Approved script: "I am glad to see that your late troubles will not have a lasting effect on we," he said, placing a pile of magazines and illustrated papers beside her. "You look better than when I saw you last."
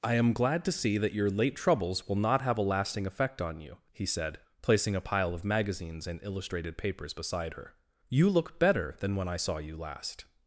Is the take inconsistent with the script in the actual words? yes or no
yes